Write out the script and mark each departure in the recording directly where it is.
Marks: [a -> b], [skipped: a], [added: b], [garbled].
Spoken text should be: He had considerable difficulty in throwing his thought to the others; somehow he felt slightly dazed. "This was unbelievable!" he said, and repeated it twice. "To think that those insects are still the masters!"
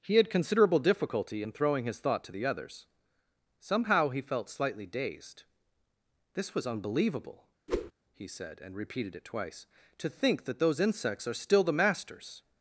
He had considerable difficulty in throwing his thought to the others; somehow he felt slightly dazed. "This was unbelievable!" he said, and repeated it twice. "To think that those insects are still the masters!"